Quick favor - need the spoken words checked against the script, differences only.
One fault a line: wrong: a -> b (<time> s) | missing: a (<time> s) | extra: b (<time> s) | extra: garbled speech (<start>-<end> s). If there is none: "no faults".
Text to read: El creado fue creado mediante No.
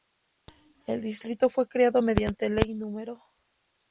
wrong: creado -> distrito (1.0 s)
extra: Ley (2.5 s)